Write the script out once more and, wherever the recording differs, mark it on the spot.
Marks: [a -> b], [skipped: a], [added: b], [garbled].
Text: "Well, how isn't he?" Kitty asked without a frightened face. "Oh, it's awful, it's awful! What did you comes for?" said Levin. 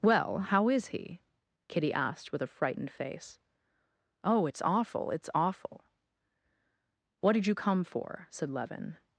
"Well, how [isn't -> is] he?" Kitty asked [without -> with] a frightened face. "Oh, it's awful, it's awful! What did you [comes -> come] for?" said Levin.